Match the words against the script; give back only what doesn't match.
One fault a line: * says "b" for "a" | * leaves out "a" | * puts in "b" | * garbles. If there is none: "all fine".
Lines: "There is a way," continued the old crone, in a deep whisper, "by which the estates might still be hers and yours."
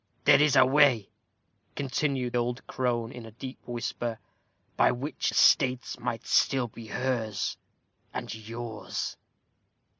* leaves out "the"
* leaves out "the"